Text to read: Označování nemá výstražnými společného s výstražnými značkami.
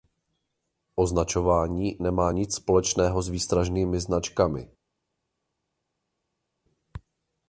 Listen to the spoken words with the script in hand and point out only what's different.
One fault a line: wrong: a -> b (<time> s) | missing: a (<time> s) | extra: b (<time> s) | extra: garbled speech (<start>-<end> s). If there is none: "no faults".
wrong: výstražnými -> nic (2.3 s)